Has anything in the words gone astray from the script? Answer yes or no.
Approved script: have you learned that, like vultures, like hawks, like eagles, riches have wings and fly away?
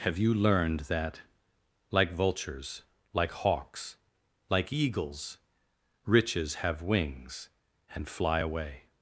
no